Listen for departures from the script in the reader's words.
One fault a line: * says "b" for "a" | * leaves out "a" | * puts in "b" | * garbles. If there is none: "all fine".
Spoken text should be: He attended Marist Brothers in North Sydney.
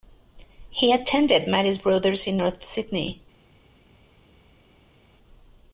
all fine